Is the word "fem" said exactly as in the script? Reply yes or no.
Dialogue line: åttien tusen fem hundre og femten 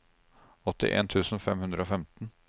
yes